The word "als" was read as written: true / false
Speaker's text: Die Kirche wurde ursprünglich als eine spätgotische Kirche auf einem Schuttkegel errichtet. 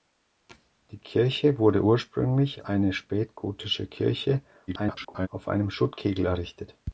false